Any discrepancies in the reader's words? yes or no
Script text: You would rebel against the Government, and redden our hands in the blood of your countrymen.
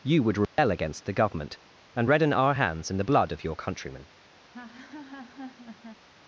no